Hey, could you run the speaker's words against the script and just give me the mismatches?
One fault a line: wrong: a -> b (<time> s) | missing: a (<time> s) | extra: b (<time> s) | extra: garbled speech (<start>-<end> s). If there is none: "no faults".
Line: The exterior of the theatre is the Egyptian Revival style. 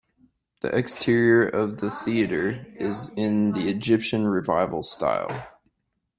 extra: in (3.2 s)